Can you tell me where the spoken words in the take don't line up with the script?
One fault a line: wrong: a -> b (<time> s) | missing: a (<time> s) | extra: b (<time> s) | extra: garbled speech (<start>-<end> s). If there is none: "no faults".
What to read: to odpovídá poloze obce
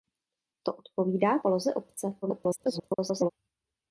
extra: garbled speech (2.2-3.3 s)